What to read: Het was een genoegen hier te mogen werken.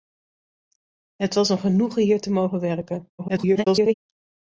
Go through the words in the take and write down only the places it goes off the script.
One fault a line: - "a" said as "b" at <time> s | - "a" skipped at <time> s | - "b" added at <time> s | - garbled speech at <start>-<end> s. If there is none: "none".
- garbled speech at 3.2-3.9 s